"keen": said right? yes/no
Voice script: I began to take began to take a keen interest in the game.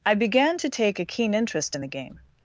yes